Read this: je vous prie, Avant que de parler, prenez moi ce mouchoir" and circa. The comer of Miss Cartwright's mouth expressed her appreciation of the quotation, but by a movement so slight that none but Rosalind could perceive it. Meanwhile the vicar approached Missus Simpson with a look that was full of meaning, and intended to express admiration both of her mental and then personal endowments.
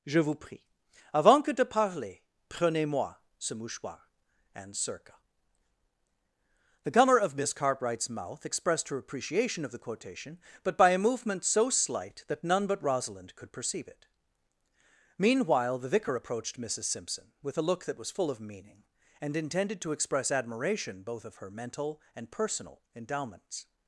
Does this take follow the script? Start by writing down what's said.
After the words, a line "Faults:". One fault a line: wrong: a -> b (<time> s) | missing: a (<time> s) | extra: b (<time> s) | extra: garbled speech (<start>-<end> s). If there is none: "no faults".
je vous prie, Avant que de parler, prenez moi ce mouchoir" and circa. The comer of Miss Cartwright's mouth expressed her appreciation of the quotation, but by a movement so slight that none but Rosalind could perceive it. Meanwhile the vicar approached Missus Simpson with a look that was full of meaning, and intended to express admiration both of her mental and personal endowments.
Faults:
missing: then (22.3 s)